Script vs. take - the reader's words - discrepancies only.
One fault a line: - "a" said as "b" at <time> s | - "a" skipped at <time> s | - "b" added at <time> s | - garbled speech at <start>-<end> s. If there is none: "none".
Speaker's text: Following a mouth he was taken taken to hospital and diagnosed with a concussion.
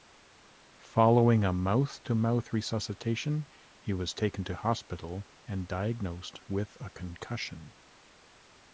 - "to mouth resuscitation" added at 2.0 s
- "taken" skipped at 4.4 s